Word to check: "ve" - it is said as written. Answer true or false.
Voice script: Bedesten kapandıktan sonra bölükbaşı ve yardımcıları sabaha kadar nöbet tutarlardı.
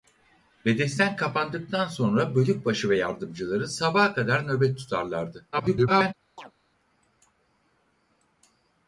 true